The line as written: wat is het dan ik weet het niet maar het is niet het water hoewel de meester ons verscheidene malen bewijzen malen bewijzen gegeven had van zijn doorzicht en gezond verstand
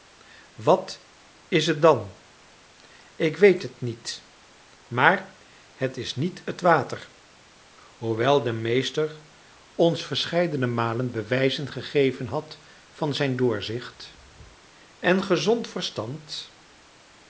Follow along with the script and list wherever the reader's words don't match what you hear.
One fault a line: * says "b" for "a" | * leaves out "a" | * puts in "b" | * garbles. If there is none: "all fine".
* leaves out "malen bewijzen"